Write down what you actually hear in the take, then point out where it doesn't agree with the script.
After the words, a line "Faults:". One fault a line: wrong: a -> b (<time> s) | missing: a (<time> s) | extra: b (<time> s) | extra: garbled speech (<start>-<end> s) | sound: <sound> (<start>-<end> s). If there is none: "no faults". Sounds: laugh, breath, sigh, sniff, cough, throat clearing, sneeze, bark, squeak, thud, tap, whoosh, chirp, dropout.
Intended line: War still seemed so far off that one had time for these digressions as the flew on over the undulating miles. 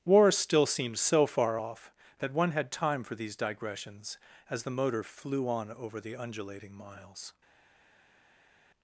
War still seemed so far off that one had time for these digressions as the motor flew on over the undulating miles.
Faults:
extra: motor (4.7 s)